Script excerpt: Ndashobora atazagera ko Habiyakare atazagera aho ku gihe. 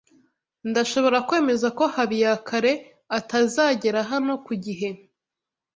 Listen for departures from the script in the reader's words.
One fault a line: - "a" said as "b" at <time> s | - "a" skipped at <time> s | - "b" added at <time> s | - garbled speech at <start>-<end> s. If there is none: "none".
- "atazagera" said as "kwemeza" at 1.3 s
- "aho" said as "hano" at 4.1 s